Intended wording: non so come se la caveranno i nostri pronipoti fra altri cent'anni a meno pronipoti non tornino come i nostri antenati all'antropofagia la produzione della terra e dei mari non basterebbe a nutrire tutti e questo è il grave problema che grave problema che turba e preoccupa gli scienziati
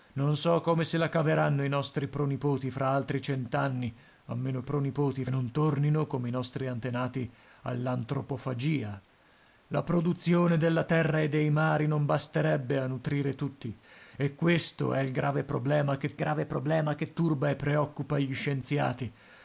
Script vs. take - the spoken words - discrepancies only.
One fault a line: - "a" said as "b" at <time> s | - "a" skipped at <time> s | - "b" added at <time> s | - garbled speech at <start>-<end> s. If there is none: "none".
none